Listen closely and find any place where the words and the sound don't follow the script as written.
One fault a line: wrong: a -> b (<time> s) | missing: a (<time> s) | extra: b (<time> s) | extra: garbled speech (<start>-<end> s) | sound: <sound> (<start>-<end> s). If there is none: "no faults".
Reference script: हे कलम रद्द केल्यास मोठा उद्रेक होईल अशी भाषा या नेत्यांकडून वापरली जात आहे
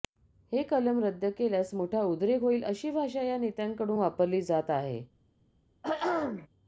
sound: throat clearing (5.8-6.5 s)